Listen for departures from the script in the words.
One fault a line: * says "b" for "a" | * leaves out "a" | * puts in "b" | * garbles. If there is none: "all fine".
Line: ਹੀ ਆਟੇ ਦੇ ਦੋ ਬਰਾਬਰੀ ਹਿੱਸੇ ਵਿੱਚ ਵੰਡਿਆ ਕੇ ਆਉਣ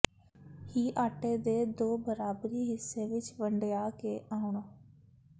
all fine